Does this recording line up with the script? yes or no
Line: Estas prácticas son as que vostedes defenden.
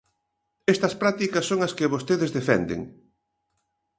yes